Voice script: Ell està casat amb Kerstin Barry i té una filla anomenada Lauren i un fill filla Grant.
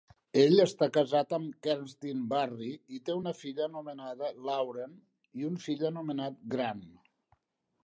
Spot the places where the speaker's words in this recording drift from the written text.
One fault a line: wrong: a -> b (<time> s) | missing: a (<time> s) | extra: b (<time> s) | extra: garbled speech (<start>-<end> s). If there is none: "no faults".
wrong: filla -> anomenat (5.9 s)